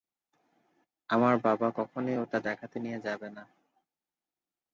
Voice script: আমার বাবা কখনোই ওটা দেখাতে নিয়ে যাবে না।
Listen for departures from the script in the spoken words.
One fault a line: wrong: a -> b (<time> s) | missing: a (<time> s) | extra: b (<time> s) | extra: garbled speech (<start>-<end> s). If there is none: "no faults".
no faults